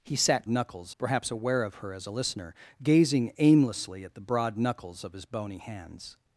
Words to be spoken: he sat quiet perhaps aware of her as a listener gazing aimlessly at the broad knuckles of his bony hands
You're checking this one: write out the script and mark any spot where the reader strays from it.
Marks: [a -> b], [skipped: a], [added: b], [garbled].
he sat [quiet -> knuckles] perhaps aware of her as a listener gazing aimlessly at the broad knuckles of his bony hands